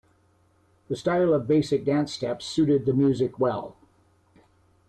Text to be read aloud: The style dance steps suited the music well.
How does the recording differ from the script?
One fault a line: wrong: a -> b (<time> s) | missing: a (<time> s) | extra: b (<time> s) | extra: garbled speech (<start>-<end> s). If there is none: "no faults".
extra: of basic (1.3 s)